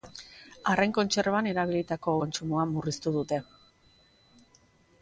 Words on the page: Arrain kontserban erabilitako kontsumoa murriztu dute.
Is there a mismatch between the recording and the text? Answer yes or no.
no